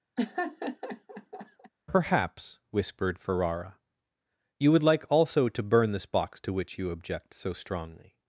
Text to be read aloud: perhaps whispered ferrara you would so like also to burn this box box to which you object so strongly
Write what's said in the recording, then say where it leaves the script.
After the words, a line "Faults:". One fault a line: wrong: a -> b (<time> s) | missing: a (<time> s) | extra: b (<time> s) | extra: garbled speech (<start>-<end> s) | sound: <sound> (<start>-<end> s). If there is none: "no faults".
perhaps whispered ferrara you would like also to burn this box to which you object so strongly
Faults:
sound: laugh (0.2-1.7 s)
missing: so (4.8 s)
missing: box (6.4 s)